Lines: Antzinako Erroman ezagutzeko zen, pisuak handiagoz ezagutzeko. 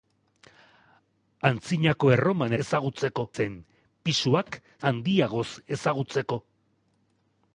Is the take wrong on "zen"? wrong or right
right